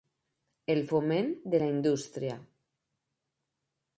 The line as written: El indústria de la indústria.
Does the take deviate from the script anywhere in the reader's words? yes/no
yes